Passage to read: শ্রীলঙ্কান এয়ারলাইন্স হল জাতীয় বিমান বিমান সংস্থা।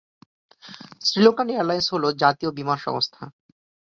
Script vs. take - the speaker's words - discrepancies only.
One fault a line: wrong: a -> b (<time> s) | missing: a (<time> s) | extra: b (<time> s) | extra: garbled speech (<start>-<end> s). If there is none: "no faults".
missing: বিমান (2.8 s)